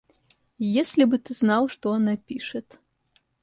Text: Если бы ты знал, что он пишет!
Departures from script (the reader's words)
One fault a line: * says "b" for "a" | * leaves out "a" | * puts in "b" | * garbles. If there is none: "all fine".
* says "она" for "он"